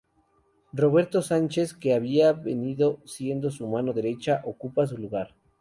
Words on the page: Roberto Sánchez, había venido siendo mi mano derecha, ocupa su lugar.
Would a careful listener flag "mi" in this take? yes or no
yes